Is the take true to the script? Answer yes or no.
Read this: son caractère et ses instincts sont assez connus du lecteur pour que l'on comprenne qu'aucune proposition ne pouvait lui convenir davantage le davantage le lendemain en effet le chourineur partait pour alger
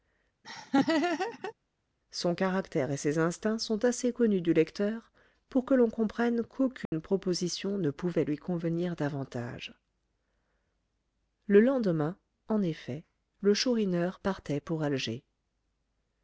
no